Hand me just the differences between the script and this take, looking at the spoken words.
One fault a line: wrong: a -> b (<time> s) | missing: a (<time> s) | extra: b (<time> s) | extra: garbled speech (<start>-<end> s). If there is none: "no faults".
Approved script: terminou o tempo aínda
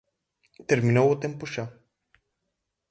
wrong: aínda -> xa (1.5 s)